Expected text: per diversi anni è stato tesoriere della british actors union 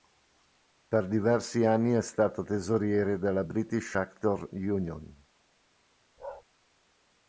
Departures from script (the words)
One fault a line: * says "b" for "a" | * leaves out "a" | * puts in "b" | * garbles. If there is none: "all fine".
all fine